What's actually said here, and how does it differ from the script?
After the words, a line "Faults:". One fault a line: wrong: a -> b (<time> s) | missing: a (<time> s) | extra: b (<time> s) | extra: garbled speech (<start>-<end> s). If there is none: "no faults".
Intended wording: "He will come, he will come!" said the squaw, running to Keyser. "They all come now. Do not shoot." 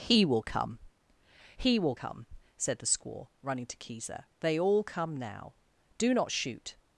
"He will come, he will come!" said the squaw, running to Keyser. "They all come now. Do not shoot."
Faults:
no faults